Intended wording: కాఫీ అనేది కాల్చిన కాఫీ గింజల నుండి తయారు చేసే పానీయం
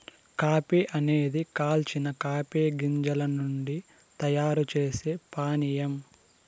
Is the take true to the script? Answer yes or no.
yes